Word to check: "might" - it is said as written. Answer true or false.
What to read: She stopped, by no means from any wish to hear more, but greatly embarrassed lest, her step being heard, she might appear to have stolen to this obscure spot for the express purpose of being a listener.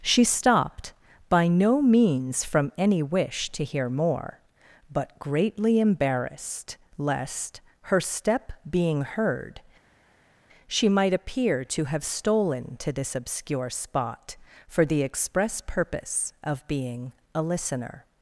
true